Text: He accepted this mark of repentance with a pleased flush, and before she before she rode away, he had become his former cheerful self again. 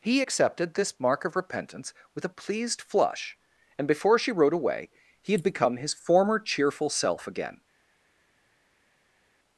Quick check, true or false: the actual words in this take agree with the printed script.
false